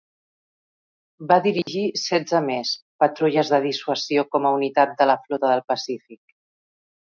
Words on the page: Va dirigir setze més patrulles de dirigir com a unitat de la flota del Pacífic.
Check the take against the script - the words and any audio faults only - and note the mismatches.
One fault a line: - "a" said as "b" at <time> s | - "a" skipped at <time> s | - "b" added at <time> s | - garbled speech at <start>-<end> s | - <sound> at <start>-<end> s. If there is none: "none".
- dropout at 1.6-1.7 s
- "dirigir" said as "dissuasió" at 3.7 s